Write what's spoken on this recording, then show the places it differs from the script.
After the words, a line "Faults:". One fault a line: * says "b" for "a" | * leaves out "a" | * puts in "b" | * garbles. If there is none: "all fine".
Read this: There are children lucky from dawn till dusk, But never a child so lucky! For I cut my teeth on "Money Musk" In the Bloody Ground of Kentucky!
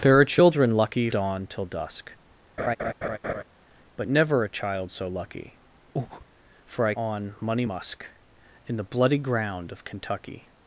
There are children lucky dawn till dusk, But never a child so lucky! For I on "Money Musk" In the Bloody Ground of Kentucky!
Faults:
* leaves out "from"
* leaves out "cut my teeth"